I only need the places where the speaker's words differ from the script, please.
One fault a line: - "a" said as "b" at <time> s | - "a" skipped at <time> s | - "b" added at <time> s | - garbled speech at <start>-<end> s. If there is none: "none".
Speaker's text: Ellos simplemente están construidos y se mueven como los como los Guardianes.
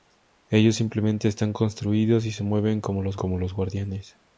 none